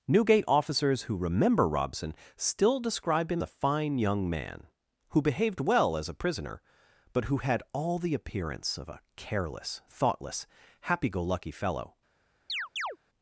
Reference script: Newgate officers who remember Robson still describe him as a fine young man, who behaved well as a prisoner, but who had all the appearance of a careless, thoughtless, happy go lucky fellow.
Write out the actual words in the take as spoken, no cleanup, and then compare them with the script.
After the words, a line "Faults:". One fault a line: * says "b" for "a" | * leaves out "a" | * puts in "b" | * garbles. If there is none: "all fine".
Newgate officers who remember Robson still describe him a fine young man, who behaved well as a prisoner, but who had all the appearance of a careless, thoughtless, happy go lucky fellow.
Faults:
* leaves out "as"